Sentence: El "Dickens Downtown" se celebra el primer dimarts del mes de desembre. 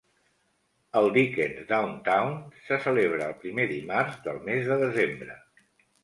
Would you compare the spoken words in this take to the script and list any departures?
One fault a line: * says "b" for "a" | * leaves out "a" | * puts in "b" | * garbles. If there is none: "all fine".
all fine